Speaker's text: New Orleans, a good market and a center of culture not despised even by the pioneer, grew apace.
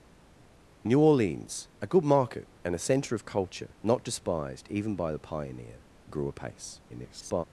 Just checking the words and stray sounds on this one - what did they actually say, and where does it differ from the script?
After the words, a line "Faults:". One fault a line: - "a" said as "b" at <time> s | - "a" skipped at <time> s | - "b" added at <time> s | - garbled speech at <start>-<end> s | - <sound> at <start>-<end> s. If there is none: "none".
New Orleans, a good market and a center of culture not despised even by the pioneer, grew apace. [garbled]
Faults:
- garbled speech at 6.9-7.4 s